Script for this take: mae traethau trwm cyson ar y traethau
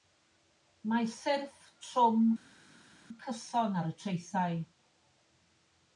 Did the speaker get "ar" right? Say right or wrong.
right